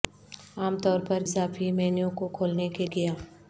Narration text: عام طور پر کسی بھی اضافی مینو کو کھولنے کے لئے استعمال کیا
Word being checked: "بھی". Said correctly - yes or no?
no